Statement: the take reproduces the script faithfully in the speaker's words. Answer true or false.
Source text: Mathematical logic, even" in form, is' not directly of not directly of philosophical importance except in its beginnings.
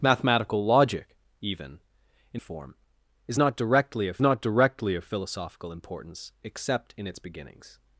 true